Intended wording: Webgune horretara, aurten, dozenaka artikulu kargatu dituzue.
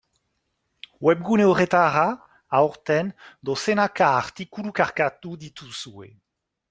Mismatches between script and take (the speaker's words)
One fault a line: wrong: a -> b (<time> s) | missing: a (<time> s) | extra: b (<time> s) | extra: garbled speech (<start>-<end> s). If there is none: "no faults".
no faults